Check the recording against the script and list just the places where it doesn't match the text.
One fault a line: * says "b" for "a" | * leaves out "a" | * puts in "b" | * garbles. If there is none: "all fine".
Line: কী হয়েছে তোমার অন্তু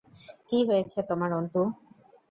all fine